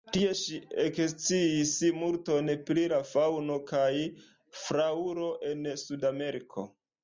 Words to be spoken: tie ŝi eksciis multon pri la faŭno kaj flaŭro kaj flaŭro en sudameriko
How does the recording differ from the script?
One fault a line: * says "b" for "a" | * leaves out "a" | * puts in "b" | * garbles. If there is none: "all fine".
* leaves out "kaj flaŭro"